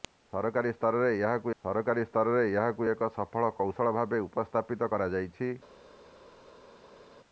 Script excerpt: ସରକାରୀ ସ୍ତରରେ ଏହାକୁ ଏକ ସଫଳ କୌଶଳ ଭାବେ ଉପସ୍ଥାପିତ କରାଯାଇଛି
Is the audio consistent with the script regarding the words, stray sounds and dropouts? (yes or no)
no